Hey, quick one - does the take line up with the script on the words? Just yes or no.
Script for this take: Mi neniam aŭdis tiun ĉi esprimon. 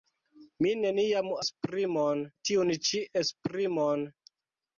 no